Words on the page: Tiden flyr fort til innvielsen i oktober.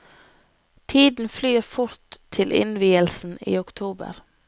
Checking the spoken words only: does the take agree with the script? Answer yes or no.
yes